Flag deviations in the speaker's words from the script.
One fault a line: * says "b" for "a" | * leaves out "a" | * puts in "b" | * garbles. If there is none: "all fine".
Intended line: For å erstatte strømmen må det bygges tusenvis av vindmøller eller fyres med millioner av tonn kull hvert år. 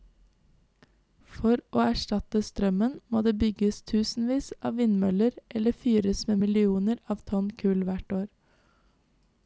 all fine